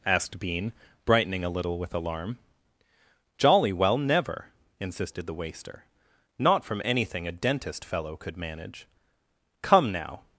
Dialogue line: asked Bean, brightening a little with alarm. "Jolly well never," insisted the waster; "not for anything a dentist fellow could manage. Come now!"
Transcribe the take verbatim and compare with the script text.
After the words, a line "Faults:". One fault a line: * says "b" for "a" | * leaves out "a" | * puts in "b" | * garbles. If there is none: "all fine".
asked Bean, brightening a little with alarm. "Jolly well never," insisted the waster; "not from anything a dentist fellow could manage. Come now!"
Faults:
* says "from" for "for"